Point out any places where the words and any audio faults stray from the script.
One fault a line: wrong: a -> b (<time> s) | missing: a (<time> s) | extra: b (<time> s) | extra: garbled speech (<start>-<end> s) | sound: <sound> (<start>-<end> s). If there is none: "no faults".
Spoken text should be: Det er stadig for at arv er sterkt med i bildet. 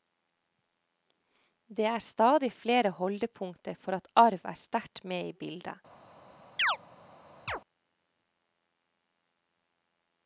extra: flere holdepunkter (2.5 s)
sound: chirp (6.6-6.8 s)
sound: chirp (7.5-7.6 s)